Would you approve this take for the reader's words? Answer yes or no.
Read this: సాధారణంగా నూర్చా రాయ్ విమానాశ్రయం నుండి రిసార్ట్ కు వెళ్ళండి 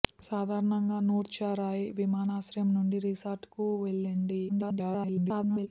no